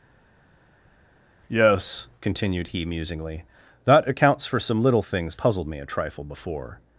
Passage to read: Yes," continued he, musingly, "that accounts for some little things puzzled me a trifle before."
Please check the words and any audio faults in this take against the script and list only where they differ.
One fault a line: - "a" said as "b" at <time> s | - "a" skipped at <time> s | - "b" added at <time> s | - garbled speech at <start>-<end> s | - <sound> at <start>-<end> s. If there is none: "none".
none